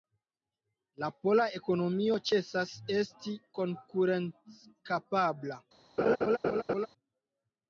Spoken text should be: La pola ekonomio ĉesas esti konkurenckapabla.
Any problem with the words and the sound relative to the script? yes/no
yes